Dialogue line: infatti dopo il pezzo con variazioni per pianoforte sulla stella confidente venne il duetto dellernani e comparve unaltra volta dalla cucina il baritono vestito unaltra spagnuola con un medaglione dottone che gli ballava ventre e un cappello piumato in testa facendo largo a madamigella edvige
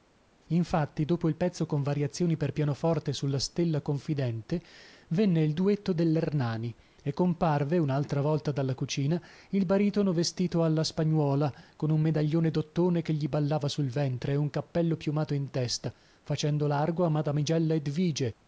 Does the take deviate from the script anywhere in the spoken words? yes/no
yes